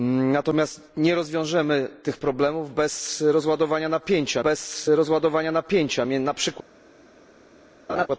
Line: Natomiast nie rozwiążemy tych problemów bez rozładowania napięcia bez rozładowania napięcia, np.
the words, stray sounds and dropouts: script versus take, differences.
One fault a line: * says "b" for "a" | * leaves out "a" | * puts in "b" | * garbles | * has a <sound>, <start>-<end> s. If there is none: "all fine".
* has a laugh, 7.9-8.1 s